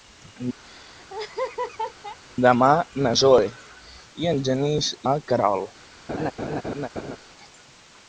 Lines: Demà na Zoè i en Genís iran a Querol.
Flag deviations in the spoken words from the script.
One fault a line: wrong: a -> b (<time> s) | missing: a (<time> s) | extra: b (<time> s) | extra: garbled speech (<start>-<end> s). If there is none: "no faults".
missing: iran (4.9 s)